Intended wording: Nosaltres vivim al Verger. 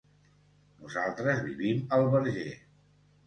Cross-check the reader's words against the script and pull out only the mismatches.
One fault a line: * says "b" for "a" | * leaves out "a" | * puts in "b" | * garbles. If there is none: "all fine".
all fine